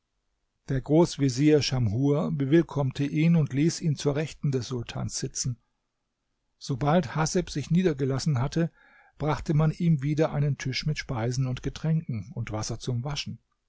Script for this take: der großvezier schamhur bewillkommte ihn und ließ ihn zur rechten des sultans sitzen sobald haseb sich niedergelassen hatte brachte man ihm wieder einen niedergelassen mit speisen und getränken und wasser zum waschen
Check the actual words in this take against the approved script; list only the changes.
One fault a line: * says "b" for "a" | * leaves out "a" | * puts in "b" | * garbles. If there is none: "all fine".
* says "tisch" for "niedergelassen"